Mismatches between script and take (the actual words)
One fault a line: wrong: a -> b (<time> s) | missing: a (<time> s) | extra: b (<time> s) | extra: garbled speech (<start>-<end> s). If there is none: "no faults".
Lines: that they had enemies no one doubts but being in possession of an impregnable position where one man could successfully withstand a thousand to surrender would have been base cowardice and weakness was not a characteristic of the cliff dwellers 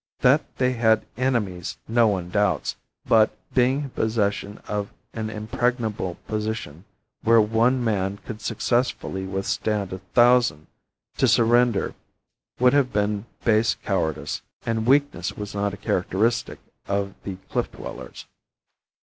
no faults